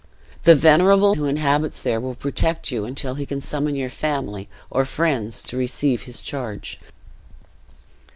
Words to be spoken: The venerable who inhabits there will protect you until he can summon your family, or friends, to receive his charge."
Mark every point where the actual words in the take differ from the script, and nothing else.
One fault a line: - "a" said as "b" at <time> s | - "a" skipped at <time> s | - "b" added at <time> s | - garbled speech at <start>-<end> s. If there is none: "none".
none